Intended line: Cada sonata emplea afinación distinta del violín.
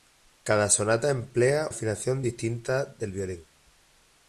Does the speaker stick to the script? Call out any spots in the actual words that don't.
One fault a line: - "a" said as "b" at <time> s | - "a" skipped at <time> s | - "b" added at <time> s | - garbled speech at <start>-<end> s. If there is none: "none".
none